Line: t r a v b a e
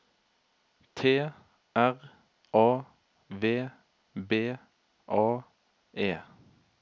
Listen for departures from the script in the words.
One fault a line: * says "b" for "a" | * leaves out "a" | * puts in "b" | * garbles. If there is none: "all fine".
all fine